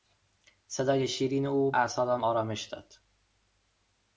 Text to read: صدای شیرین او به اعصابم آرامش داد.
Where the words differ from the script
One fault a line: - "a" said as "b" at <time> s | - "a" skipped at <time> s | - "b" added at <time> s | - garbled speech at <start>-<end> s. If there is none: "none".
- "به" skipped at 1.7 s